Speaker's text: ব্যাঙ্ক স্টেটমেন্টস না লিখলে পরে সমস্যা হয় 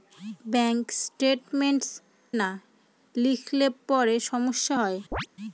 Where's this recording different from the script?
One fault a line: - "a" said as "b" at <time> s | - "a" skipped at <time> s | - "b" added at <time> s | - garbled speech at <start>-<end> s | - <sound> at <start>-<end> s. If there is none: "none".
- chirp at 5.1-5.3 s